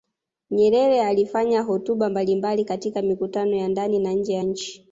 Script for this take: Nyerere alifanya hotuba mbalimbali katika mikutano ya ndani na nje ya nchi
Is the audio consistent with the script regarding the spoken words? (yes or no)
yes